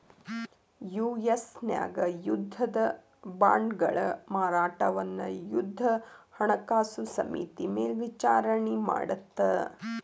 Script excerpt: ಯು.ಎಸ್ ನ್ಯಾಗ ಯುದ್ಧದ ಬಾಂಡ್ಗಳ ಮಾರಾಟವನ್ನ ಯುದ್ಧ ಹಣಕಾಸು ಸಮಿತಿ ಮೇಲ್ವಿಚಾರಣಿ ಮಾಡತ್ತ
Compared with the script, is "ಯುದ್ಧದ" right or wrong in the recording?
right